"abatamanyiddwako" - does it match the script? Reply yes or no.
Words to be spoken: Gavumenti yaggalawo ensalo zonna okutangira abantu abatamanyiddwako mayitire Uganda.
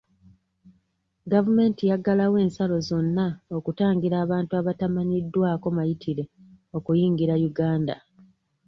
yes